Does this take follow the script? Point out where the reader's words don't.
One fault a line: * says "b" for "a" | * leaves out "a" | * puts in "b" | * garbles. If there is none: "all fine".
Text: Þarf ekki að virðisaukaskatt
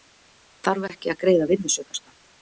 * puts in "greiða"